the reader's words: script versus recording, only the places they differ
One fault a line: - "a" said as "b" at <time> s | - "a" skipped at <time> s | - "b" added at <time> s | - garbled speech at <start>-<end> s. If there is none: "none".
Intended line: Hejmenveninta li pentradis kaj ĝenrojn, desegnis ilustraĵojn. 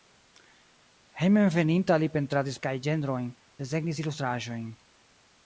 none